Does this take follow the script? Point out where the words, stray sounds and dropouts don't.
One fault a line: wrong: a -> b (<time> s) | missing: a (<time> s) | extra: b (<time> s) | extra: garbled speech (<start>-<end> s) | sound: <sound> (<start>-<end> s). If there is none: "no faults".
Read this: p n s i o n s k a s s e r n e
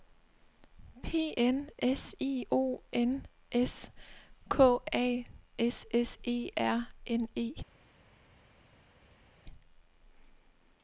no faults